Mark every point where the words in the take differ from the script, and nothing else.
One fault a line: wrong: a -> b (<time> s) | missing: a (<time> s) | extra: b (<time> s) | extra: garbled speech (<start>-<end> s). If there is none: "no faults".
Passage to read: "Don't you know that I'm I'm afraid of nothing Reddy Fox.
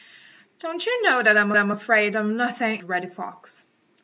no faults